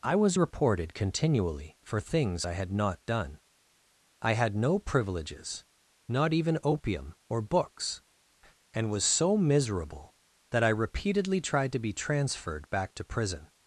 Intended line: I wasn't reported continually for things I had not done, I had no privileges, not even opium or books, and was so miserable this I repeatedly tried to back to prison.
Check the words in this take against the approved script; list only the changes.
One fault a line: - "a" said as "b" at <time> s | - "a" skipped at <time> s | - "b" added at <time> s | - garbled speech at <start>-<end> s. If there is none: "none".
- "wasn't" said as "was" at 0.1 s
- "this" said as "that" at 10.5 s
- "be transferred" added at 11.8 s